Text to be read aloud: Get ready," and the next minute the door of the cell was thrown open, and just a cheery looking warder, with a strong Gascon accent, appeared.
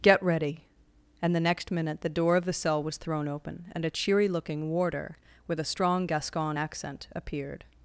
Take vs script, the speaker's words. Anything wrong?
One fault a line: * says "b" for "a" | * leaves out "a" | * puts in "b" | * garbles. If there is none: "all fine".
* leaves out "just"